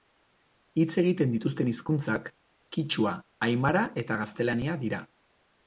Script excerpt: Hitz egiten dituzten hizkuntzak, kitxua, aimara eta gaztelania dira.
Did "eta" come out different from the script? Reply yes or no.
no